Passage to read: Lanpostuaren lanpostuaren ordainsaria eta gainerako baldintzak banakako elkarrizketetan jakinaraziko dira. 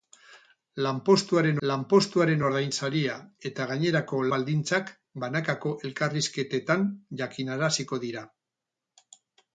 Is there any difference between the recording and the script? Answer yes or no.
no